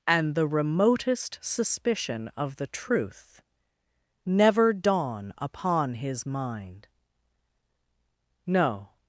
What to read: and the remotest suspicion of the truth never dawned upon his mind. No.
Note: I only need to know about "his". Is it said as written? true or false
true